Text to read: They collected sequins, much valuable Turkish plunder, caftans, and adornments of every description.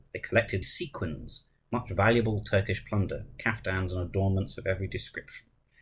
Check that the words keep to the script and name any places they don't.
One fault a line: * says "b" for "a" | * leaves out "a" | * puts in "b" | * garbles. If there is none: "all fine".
all fine